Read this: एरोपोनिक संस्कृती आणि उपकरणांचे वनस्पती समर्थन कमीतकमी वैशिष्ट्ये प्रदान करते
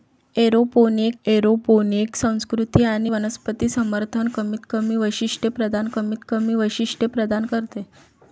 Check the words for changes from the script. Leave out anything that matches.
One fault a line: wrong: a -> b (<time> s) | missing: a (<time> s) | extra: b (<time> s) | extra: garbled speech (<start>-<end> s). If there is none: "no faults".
extra: एरोपोनिक (1.2 s)
missing: उपकरणांचे (3.1 s)
extra: कमीतकमी वैशिष्ट्ये प्रदान (5.9 s)